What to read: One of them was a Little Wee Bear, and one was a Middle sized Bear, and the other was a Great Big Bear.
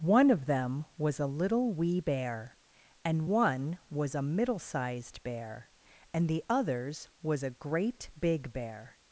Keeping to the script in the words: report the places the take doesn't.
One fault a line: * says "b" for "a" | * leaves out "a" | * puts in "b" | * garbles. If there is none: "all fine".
* says "others" for "other"